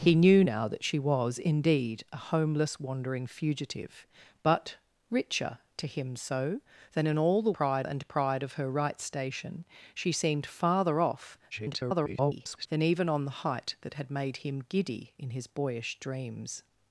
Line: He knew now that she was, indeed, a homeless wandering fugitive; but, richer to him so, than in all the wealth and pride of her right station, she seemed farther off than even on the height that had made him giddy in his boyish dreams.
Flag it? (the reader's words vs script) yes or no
yes